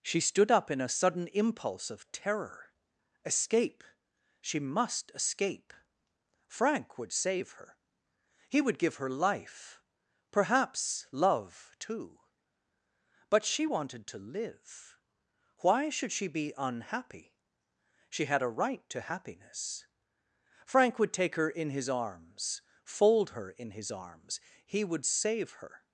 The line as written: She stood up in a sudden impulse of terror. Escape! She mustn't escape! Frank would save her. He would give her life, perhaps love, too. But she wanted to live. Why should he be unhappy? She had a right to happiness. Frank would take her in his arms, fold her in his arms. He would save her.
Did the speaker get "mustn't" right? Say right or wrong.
wrong